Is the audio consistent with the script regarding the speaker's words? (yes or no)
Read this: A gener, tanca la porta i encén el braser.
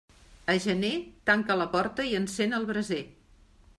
yes